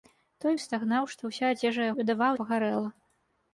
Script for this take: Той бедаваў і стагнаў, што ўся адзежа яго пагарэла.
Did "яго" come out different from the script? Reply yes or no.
yes